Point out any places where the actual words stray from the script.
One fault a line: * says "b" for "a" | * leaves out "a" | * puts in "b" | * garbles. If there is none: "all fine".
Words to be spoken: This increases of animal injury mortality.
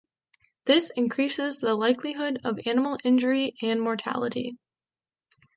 * puts in "the likelihood"
* puts in "and"